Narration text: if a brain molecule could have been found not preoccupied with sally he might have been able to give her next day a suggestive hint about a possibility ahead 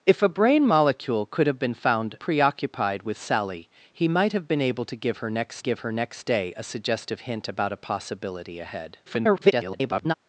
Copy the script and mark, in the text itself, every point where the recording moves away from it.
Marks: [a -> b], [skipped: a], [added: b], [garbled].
if a brain molecule could have been found [skipped: not] preoccupied with sally he might have been able to give her next [added: give her next] day a suggestive hint about a possibility ahead [garbled]